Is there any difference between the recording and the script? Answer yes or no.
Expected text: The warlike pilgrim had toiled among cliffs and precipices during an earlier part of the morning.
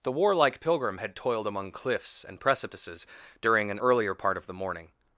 no